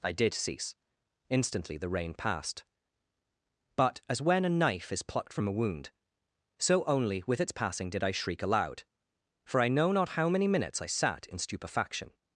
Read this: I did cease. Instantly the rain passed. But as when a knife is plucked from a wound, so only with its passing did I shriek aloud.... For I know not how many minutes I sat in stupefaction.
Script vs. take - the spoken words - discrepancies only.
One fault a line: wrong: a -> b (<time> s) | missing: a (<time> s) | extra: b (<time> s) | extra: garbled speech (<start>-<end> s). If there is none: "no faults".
no faults